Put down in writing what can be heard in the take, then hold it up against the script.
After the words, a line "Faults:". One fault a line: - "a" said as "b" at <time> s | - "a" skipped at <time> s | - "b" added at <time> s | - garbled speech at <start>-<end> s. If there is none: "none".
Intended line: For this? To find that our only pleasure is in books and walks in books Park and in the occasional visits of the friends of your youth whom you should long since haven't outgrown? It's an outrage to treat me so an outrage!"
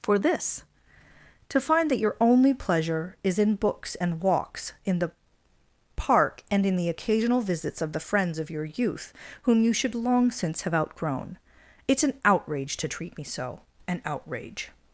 For this? To find that your only pleasure is in books and walks in the Park and in the occasional visits of the friends of your youth whom you should long since have outgrown? It's an outrage to treat me so an outrage!"
Faults:
- "our" said as "your" at 2.0 s
- "books" said as "the" at 5.0 s
- "haven't" said as "have" at 10.6 s